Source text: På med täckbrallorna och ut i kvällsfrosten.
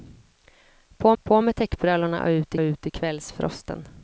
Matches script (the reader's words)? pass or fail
fail